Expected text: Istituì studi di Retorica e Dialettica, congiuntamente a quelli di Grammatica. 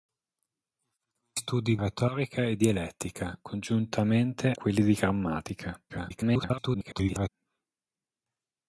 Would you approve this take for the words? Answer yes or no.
no